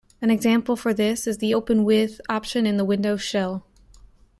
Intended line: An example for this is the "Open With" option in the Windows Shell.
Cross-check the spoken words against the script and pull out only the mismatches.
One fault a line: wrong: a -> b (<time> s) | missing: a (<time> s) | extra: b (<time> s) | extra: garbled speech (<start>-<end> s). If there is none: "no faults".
no faults